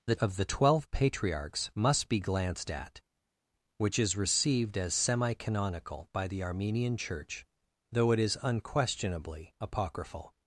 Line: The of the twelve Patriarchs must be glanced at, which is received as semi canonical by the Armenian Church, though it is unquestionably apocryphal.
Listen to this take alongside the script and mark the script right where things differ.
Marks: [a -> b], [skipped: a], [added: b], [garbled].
The of the twelve Patriarchs must be glanced at, which is received as semi canonical by the Armenian Church, though it is unquestionably apocryphal.